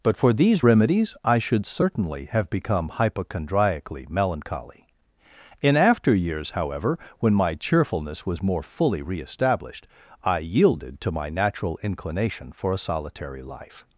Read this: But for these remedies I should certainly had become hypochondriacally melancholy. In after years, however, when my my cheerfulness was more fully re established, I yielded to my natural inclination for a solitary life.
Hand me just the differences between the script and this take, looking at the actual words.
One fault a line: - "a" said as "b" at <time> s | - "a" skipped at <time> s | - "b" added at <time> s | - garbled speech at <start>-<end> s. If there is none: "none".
- "had" said as "have" at 2.3 s
- "my" skipped at 7.5 s